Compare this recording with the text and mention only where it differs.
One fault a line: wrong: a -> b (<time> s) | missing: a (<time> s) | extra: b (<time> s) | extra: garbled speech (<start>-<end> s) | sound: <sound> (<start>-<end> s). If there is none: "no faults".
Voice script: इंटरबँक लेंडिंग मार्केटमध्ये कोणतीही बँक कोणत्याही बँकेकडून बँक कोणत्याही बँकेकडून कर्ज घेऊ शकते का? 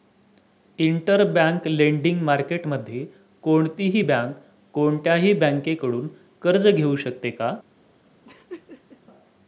missing: बँक कोणत्याही बँकेकडून (6.1 s)
sound: laugh (8.2-9.0 s)